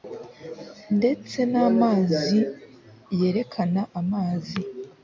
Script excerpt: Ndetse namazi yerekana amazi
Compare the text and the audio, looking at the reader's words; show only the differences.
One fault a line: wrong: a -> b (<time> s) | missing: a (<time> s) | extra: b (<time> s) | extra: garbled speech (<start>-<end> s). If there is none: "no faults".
no faults